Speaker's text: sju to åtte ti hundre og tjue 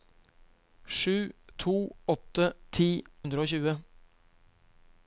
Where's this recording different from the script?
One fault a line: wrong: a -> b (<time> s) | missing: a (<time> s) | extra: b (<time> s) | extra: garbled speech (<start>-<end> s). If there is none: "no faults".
no faults